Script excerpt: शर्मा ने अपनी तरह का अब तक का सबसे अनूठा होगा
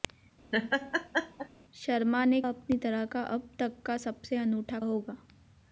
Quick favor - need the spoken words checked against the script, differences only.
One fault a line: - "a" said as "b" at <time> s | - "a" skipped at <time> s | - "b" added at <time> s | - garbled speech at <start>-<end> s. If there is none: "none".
none